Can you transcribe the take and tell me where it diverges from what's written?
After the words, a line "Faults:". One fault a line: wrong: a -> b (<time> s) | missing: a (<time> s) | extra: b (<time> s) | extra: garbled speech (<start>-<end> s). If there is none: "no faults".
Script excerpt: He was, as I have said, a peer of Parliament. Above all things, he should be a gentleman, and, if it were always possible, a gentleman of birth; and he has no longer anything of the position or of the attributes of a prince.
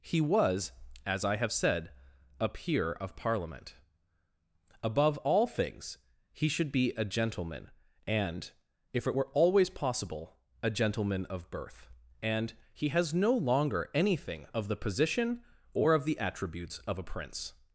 He was, as I have said, a peer of Parliament. Above all things, he should be a gentleman, and, if it were always possible, a gentleman of birth; and he has no longer anything of the position or of the attributes of a prince.
Faults:
no faults